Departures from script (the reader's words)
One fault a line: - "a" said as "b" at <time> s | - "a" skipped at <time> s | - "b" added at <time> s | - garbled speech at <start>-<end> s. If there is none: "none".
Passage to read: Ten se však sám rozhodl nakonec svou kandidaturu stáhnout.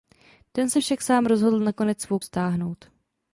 - "kandidaturu" skipped at 2.2 s